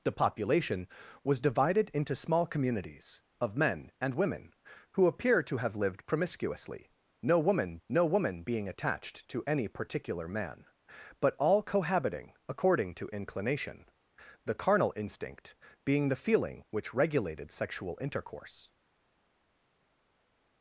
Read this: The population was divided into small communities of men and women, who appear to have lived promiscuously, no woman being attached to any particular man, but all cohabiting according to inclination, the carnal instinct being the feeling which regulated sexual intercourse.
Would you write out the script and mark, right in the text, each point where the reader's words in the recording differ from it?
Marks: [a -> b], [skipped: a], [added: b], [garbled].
The population was divided into small communities of men and women, who appear to have lived promiscuously, no woman [added: no woman] being attached to any particular man, but all cohabiting according to inclination, the carnal instinct being the feeling which regulated sexual intercourse.